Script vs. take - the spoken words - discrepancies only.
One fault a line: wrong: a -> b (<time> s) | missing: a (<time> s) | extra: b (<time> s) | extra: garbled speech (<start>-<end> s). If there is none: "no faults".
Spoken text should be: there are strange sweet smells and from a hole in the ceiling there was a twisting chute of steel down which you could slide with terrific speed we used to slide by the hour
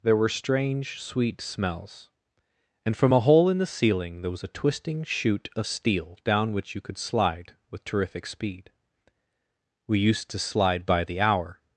wrong: are -> were (0.2 s)